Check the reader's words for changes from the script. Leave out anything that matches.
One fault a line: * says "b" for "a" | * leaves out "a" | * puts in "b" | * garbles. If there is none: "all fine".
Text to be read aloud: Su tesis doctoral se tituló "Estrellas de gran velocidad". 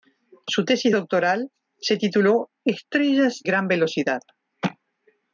* leaves out "de"